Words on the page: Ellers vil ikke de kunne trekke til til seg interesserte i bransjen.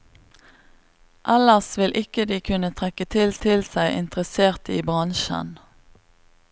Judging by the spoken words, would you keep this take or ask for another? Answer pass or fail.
pass